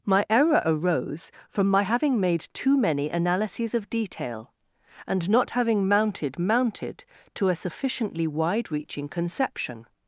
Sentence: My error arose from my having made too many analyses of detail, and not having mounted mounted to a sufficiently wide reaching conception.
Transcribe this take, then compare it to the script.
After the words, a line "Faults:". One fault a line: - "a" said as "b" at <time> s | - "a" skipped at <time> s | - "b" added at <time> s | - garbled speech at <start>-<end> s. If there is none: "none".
My error arose from my having made too many analyses of detail, and not having mounted mounted to a sufficiently wide reaching conception.
Faults:
none